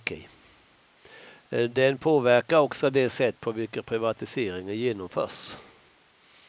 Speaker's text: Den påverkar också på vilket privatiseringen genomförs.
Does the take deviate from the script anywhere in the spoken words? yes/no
yes